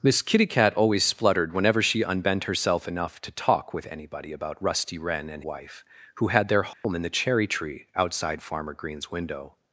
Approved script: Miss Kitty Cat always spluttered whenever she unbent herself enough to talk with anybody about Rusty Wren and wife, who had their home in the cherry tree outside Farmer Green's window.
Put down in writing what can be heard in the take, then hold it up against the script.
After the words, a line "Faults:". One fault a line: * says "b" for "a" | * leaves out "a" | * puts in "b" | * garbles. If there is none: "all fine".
Miss Kitty Cat always spluttered whenever she unbent herself enough to talk with anybody about Rusty Wren and wife, who had their home in the cherry tree outside Farmer Green's window.
Faults:
all fine